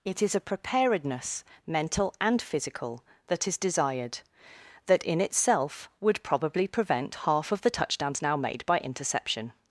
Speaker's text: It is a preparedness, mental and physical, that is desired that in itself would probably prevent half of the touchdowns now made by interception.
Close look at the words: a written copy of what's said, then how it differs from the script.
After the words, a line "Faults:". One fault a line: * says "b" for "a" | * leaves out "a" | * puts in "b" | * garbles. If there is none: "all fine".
It is a preparedness, mental and physical, that is desired that in itself would probably prevent half of the touchdowns now made by interception.
Faults:
all fine